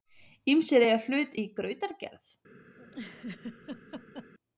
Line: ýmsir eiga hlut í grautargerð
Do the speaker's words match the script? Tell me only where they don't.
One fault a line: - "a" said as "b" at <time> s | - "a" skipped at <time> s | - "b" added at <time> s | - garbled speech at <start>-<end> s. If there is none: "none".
none